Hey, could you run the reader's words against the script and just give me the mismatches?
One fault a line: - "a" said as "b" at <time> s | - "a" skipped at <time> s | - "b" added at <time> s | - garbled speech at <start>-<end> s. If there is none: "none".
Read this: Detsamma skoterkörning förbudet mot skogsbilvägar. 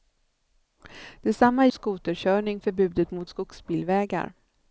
none